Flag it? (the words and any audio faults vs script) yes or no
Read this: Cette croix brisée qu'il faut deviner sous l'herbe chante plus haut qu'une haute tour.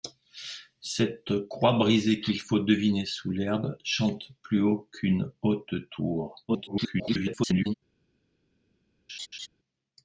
yes